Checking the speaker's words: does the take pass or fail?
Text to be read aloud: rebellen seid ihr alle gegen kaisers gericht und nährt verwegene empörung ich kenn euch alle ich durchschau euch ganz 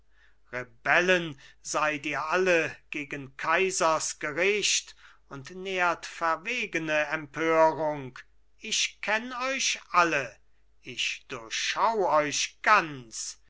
pass